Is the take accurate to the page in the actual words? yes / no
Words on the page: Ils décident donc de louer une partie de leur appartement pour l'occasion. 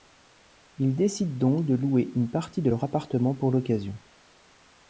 yes